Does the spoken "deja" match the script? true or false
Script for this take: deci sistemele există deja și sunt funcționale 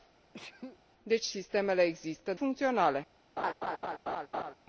false